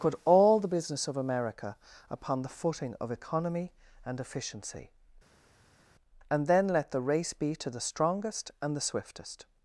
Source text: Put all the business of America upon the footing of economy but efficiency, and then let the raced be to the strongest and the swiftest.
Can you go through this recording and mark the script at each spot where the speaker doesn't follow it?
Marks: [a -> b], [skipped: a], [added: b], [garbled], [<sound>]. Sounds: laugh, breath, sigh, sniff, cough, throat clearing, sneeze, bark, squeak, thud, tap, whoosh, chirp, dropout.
Put all the business of America upon the footing of economy [but -> and] efficiency, and then let the [raced -> race] be to the strongest and the swiftest.